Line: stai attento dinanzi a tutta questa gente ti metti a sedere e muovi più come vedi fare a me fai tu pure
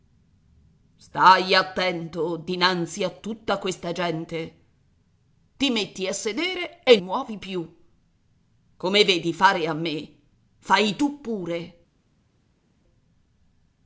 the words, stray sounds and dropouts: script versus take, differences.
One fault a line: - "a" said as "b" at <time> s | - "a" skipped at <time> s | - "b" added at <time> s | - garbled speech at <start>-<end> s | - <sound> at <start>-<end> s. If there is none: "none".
none